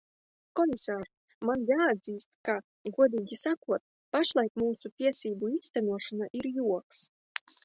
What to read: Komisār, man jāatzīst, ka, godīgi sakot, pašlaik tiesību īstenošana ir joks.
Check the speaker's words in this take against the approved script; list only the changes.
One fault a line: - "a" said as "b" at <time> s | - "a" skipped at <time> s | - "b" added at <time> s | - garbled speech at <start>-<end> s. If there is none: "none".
- "mūsu" added at 4.6 s